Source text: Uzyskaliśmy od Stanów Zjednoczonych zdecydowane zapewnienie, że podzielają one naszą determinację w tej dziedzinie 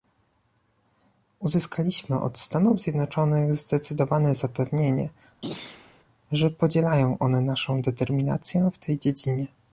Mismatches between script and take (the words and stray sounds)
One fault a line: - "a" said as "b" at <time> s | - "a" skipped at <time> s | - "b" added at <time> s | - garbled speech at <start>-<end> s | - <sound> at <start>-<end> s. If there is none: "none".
- throat clearing at 5.4-6.0 s